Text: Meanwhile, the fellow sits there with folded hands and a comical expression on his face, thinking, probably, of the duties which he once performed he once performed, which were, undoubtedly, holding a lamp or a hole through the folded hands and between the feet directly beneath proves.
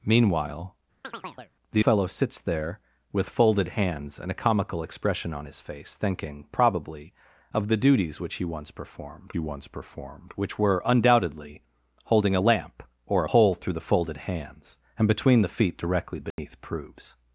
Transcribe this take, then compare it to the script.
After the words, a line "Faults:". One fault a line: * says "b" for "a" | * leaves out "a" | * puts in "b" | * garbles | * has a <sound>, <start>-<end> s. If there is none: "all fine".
Meanwhile, the fellow sits there with folded hands and a comical expression on his face, thinking, probably, of the duties which he once performed he once performed, which were, undoubtedly, holding a lamp or a hole through the folded hands and between the feet directly beneath proves.
Faults:
* has a chirp, 1.0-1.5 s
* has a dropout, 16.3-16.4 s